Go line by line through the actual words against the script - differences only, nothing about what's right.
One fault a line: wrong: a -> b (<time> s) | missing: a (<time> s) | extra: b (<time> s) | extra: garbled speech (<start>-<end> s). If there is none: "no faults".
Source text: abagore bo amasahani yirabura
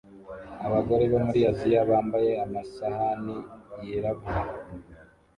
extra: muri aziya bambaye (1.2 s)